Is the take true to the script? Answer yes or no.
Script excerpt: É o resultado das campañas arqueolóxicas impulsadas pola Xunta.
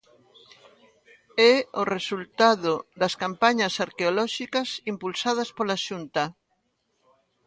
yes